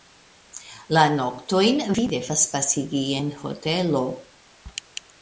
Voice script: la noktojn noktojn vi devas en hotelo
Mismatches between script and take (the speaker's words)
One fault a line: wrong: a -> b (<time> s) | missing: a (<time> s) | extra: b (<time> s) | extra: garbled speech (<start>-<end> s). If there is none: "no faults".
missing: noktojn (1.8 s)
extra: pasigi (2.5 s)